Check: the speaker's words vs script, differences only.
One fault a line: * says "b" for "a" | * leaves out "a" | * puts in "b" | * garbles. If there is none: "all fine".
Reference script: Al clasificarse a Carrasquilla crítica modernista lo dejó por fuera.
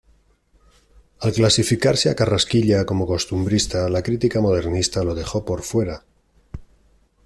* puts in "como costumbrista la"